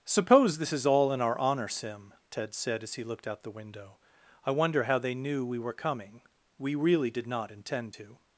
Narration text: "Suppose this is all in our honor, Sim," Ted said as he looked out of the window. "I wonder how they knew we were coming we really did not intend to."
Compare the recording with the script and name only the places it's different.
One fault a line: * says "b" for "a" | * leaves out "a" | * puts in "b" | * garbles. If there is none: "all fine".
* leaves out "of"